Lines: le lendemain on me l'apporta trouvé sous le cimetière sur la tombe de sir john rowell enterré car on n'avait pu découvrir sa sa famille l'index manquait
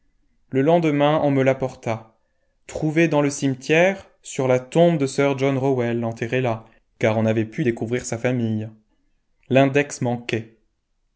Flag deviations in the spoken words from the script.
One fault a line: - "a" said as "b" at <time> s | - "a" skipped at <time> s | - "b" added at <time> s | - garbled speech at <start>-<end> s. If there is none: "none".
- "sous" said as "dans" at 3.1 s
- "là" added at 6.4 s
- "sa" skipped at 8.2 s